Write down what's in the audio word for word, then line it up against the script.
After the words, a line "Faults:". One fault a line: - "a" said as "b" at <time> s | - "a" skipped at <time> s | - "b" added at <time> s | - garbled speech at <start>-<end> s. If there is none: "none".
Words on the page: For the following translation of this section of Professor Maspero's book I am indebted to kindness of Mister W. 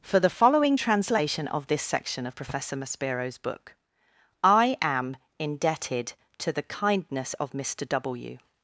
For the following translation of this section of Professor Maspero's book I am indebted to the kindness of Mister W.
Faults:
- "the" added at 6.5 s